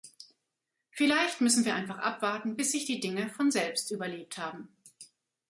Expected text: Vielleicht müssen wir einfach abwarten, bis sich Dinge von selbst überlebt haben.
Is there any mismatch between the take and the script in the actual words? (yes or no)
yes